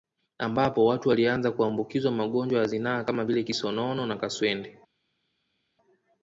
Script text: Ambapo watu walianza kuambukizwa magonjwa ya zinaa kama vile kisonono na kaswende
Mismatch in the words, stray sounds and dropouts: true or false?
false